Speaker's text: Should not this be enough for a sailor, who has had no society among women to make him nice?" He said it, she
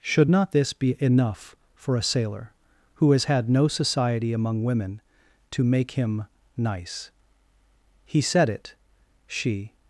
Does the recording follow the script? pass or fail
pass